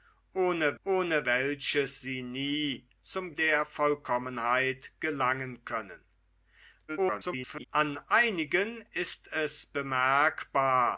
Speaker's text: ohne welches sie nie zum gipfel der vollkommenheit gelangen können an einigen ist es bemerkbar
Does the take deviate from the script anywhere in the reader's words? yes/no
yes